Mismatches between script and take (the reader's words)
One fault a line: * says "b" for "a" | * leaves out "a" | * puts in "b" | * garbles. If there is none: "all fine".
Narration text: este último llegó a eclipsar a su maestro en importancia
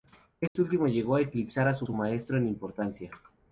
* puts in "su"